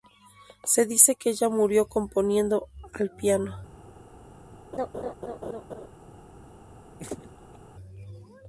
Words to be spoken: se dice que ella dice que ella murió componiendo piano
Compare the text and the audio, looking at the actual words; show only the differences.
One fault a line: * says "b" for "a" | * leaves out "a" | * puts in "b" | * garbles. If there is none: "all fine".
* leaves out "dice que ella"
* puts in "al"